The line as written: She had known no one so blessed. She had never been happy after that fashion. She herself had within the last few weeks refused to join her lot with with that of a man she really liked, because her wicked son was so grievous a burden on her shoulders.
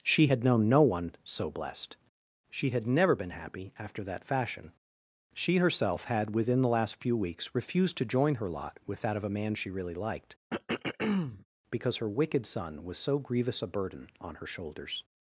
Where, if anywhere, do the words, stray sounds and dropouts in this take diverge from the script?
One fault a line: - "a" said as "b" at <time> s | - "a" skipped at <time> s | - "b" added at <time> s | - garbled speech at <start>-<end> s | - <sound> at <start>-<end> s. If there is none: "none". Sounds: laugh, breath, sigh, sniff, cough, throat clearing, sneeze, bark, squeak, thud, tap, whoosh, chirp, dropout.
- "with" skipped at 9.0 s
- throat clearing at 10.5-11.5 s